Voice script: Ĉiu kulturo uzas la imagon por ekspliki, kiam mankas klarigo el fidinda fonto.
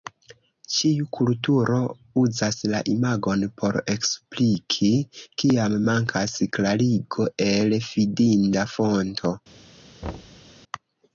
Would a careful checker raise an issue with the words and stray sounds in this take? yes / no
yes